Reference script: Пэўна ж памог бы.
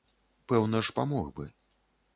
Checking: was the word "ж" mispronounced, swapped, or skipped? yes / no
no